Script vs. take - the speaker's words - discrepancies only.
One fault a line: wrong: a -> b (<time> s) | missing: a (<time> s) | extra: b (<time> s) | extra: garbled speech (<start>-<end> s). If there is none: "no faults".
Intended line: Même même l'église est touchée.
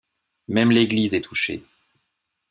missing: même (0.7 s)